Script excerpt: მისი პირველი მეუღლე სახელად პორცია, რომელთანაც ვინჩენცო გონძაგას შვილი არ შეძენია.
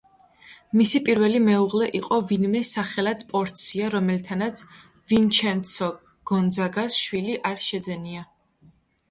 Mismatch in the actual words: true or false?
true